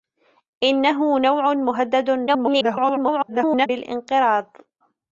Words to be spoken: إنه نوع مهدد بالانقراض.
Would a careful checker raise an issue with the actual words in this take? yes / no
yes